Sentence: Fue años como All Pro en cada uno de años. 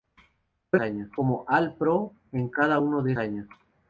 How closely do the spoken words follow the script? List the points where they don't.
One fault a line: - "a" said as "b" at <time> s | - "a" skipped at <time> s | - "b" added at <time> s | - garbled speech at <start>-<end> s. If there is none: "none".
none